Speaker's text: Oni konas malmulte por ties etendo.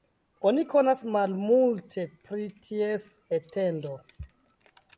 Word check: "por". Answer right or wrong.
wrong